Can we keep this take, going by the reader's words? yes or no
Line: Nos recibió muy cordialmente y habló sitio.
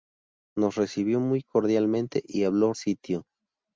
yes